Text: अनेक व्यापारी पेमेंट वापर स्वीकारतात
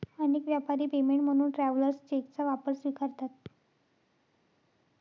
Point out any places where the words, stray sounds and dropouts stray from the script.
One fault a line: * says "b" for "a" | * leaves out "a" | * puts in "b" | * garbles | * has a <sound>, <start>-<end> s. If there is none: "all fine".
* puts in "म्हणून ट्रॅव्हलर्स चेकचा"